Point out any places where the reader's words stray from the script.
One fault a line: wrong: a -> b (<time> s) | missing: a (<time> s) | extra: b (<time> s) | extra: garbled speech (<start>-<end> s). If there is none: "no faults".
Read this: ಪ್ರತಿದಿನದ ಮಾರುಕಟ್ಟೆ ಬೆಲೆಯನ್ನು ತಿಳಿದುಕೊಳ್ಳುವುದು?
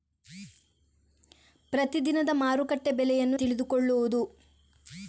no faults